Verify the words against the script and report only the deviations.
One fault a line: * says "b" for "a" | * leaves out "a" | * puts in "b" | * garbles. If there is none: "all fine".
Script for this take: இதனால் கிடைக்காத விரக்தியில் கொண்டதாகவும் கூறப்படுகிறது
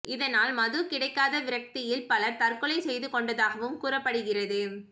* puts in "மது"
* puts in "பலர் தற்கொலை செய்து"